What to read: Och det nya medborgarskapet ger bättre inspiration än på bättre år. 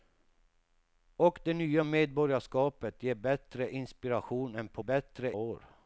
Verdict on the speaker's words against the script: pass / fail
pass